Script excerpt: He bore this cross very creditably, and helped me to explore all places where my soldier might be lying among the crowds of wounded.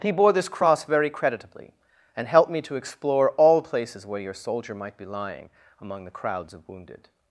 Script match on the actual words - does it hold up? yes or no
no